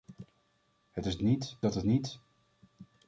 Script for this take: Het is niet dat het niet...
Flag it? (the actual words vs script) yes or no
no